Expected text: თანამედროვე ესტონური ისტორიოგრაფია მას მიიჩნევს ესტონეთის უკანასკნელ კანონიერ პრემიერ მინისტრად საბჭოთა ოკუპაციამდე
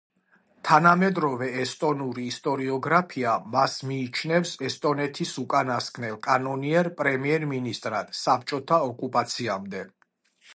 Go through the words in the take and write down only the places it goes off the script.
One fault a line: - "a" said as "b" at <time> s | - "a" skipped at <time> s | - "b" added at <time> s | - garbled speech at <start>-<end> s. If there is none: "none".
none